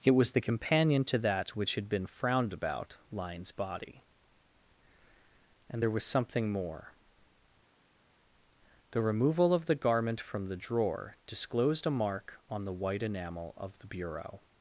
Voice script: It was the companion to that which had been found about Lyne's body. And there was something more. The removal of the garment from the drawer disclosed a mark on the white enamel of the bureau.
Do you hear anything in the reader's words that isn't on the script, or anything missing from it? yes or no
yes